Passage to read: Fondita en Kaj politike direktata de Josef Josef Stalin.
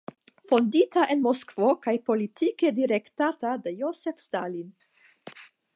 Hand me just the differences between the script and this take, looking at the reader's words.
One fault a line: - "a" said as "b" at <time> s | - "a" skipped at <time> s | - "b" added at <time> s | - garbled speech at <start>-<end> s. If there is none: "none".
- "Moskvo" added at 1.2 s
- "Josef" skipped at 4.2 s